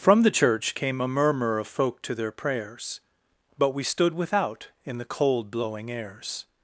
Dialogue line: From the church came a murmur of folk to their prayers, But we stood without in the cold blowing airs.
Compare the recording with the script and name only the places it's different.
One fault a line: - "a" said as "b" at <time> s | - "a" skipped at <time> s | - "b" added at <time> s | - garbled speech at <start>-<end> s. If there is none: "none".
none